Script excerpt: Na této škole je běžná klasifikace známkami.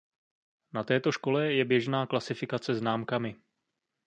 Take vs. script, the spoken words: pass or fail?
pass